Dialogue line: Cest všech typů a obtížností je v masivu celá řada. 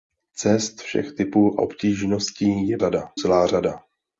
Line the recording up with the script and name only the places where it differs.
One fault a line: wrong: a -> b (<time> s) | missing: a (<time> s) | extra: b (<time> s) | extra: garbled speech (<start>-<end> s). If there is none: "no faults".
missing: a (1.6 s)
wrong: masivu -> řada (2.8 s)